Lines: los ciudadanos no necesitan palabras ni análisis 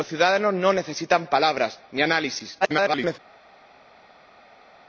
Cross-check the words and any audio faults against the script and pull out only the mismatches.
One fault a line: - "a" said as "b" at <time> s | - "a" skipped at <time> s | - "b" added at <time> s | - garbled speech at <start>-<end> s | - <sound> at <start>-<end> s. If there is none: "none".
- garbled speech at 2.6-3.2 s